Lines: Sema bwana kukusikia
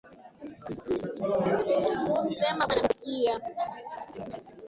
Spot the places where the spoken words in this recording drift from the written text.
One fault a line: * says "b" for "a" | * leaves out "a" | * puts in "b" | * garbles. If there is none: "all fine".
all fine